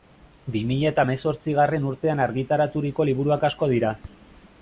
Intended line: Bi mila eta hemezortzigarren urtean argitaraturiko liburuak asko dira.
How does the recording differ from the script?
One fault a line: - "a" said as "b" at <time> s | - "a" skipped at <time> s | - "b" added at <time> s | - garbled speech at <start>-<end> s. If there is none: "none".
none